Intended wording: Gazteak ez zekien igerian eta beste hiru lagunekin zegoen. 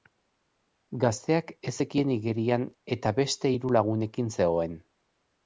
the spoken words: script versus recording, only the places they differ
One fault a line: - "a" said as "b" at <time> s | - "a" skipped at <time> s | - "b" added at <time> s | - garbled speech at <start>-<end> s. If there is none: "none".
none